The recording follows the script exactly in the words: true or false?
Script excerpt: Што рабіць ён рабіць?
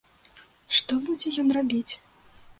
false